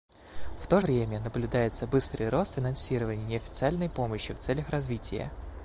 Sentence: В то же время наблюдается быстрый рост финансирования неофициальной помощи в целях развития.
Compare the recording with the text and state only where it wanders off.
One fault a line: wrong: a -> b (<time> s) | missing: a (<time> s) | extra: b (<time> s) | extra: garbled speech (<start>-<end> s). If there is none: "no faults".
missing: же (0.8 s)